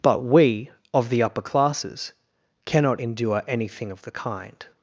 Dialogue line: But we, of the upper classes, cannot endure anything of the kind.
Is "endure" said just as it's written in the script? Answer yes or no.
yes